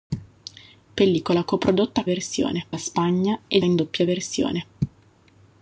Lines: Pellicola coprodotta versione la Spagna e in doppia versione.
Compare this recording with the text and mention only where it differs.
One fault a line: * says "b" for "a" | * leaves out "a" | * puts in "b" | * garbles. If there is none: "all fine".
all fine